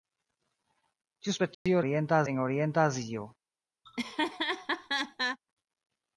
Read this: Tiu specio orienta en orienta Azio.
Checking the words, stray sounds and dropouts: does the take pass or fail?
fail